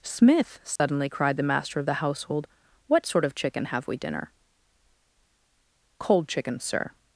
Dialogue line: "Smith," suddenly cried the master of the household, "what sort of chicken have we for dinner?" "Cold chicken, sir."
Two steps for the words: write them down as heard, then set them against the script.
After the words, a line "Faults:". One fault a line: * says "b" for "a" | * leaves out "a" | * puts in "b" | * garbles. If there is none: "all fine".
"Smith," suddenly cried the master of the household, "what sort of chicken have we dinner?" "Cold chicken, sir."
Faults:
* leaves out "for"